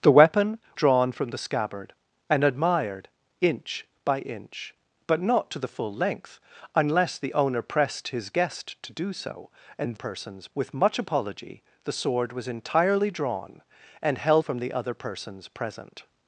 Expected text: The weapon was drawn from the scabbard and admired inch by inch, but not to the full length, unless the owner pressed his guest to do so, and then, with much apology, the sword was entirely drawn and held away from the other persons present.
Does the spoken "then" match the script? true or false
false